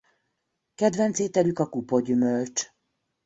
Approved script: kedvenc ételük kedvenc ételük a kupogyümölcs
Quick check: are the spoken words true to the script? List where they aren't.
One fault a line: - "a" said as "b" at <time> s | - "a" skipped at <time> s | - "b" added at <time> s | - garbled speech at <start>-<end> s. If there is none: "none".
- "kedvenc ételük" skipped at 1.6 s